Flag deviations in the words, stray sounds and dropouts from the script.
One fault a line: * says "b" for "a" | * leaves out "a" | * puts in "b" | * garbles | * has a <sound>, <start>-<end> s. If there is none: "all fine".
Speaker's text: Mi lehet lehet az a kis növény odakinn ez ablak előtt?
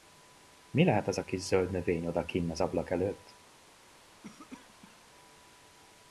* leaves out "lehet"
* puts in "zöld"
* says "az" for "ez"
* has a cough, 4.2-5.0 s